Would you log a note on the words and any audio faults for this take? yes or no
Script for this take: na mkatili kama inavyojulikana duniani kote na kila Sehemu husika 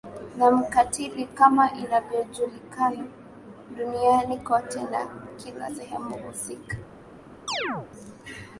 yes